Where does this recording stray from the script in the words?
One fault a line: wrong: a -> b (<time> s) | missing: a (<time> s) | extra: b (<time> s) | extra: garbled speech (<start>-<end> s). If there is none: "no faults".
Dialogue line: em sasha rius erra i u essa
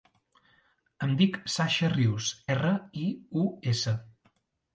extra: dic (1.2 s)